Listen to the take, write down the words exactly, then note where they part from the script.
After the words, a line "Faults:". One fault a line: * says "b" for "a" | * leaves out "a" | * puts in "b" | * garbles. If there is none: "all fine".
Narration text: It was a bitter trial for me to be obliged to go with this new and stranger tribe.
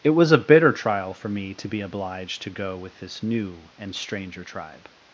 It was a bitter trial for me to be obliged to go with this new and stranger tribe.
Faults:
all fine